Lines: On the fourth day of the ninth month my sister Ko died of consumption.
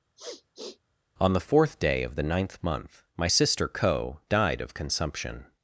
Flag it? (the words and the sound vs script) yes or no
yes